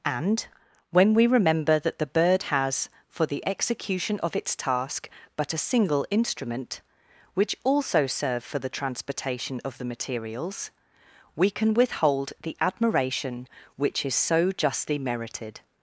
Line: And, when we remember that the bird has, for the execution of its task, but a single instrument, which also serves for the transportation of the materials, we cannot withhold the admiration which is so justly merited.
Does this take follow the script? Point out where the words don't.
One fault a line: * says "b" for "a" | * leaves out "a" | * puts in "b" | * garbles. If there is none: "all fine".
* says "serve" for "serves"
* says "can" for "cannot"